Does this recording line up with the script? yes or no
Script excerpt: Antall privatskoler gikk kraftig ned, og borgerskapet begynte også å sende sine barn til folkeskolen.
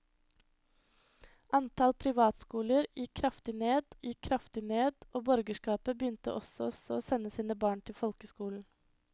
no